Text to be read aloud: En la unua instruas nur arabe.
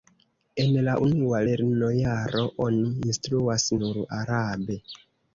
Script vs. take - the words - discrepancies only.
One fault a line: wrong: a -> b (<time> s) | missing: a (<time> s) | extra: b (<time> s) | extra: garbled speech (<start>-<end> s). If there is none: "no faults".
extra: lernojaro oni (1.5 s)